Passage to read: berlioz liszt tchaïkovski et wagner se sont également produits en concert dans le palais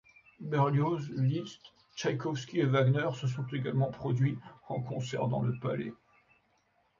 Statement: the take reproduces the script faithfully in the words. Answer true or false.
true